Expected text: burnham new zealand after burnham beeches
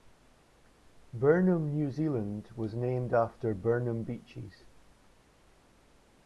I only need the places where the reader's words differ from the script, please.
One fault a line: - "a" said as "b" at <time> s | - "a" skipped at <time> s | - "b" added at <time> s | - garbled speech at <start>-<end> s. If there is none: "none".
- "was named" added at 2.5 s